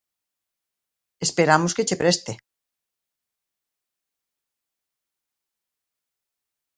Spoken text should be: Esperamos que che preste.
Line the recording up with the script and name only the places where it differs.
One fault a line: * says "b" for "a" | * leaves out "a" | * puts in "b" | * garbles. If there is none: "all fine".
all fine